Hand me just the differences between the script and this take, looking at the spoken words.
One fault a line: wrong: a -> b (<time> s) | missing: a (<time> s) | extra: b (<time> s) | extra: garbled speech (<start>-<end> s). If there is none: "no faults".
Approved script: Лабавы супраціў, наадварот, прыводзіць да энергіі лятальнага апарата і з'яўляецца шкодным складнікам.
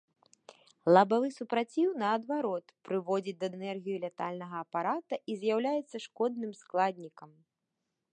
no faults